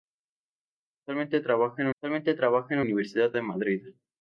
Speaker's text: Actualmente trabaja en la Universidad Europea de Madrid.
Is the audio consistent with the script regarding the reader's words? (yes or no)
no